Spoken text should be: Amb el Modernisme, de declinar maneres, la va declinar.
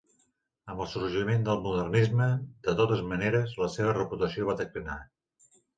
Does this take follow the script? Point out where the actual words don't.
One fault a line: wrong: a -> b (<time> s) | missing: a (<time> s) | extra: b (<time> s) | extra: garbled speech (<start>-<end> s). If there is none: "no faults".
extra: sorgiment del (0.9 s)
wrong: declinar -> totes (2.8 s)
extra: seva reputació (3.8 s)